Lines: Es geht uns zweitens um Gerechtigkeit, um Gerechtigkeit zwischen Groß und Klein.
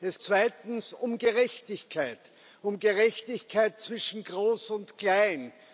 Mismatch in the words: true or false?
true